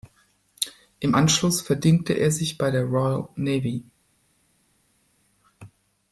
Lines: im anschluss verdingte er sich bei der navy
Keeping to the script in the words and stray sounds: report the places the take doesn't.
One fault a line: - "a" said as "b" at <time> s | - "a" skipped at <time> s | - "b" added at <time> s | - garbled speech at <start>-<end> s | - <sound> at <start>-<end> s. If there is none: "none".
- "royal" added at 2.8 s